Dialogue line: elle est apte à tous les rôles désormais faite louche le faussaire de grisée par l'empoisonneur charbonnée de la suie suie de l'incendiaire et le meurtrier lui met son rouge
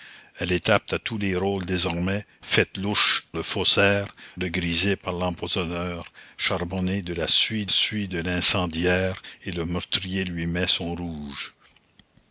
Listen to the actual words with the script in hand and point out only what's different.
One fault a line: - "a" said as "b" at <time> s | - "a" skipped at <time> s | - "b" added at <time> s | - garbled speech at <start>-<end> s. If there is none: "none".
none